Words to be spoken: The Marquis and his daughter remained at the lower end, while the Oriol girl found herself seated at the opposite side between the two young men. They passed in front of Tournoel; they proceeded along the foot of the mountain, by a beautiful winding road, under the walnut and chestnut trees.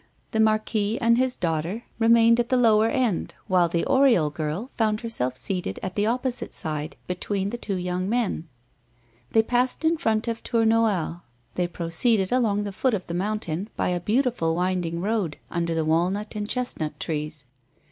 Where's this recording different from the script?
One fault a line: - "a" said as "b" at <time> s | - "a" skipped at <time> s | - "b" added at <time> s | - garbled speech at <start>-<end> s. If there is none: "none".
none